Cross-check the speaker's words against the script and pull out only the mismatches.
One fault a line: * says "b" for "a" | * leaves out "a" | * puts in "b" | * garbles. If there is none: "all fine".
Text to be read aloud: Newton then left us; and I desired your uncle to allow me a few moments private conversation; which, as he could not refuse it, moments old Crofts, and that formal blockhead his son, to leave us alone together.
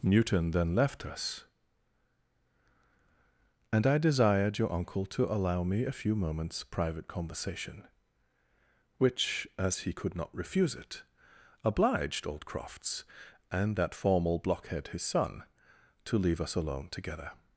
* says "obliged" for "moments"